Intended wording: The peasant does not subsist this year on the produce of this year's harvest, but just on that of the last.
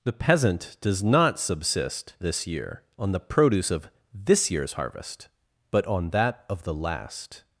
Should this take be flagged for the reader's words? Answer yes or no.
yes